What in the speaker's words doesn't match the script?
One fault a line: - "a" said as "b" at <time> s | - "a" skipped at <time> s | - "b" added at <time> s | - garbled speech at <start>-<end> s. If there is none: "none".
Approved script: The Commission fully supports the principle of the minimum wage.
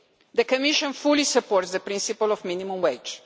none